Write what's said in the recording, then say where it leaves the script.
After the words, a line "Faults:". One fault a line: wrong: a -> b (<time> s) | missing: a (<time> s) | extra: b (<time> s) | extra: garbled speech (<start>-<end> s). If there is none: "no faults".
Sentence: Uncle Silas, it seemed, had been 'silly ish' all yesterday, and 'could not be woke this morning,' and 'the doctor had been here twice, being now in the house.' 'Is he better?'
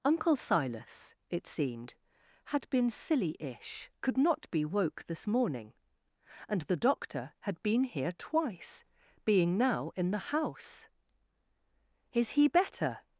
Uncle Silas, it seemed, had been 'silly ish' 'could not be woke this morning,' and 'the doctor had been here twice, being now in the house.' 'Is he better?'
Faults:
missing: all yesterday and (3.9 s)